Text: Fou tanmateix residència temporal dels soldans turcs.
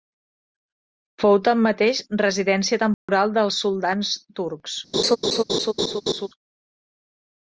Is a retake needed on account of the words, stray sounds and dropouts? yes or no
yes